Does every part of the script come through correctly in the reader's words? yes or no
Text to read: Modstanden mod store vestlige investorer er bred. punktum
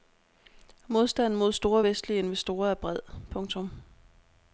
yes